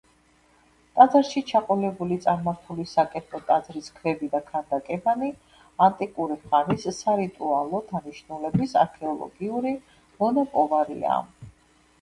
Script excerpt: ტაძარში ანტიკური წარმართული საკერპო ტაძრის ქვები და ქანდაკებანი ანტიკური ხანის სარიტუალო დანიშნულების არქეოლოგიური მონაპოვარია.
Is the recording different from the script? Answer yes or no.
yes